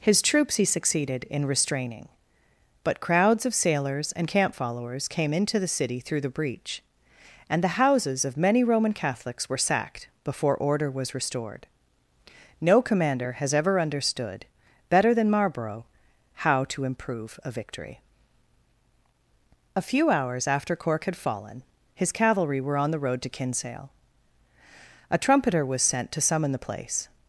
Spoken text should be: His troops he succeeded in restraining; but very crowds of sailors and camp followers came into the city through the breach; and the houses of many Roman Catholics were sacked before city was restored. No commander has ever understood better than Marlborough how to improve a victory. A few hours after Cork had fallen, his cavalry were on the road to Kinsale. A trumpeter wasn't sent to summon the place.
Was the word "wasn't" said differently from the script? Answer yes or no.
yes